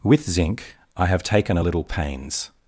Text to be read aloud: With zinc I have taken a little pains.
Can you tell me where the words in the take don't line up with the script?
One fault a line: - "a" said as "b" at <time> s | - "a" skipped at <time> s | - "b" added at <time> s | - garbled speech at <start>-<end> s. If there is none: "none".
none